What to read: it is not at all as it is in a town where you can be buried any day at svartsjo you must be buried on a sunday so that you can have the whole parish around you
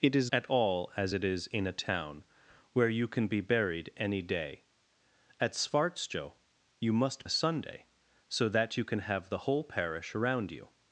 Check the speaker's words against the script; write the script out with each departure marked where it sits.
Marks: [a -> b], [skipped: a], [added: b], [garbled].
it is [skipped: not] at all as it is in a town where you can be buried any day at svartsjo you must [skipped: be buried on] a sunday so that you can have the whole parish around you